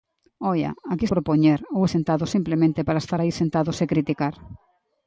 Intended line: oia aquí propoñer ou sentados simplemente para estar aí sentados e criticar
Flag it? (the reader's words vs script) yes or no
no